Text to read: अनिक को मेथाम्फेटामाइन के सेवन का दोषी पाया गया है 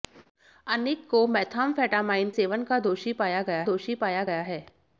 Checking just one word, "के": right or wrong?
wrong